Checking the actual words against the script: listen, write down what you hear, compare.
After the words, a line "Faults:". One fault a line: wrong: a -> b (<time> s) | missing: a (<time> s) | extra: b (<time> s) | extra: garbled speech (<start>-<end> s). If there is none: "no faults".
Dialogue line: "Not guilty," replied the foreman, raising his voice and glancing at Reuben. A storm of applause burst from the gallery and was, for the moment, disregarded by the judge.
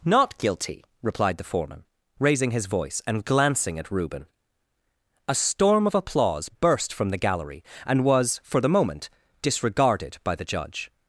"Not guilty," replied the foreman, raising his voice and glancing at Reuben. A storm of applause burst from the gallery and was, for the moment, disregarded by the judge.
Faults:
no faults